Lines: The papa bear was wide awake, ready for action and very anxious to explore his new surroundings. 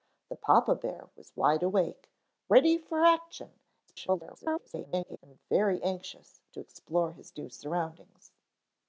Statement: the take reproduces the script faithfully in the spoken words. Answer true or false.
false